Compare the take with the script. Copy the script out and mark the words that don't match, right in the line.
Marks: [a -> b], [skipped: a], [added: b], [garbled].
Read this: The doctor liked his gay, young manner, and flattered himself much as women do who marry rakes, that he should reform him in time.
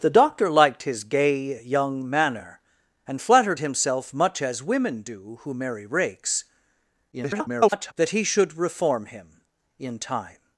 The doctor liked his gay, young manner, and flattered himself much as women do who marry rakes, [garbled] that he should reform him in time.